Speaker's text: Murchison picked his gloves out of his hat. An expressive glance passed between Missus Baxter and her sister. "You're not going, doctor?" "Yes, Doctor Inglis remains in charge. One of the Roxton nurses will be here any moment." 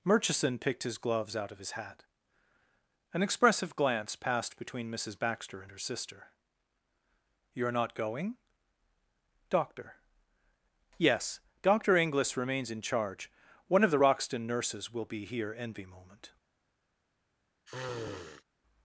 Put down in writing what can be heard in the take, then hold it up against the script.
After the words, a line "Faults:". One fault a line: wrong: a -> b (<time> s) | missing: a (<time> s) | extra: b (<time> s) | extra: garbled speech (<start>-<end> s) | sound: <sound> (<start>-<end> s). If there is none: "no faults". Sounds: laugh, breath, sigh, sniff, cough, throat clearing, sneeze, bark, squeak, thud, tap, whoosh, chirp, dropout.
Murchison picked his gloves out of his hat. An expressive glance passed between Missus Baxter and her sister. "You're not going, doctor?" "Yes, Doctor Inglis remains in charge. One of the Roxton nurses will be here envy moment."
Faults:
wrong: any -> envy (15.6 s)
sound: sniff (17.7-18.4 s)